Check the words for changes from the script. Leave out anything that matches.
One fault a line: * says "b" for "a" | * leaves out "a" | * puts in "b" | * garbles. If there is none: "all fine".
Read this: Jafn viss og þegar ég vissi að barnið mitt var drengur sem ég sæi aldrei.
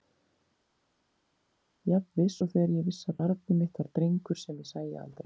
all fine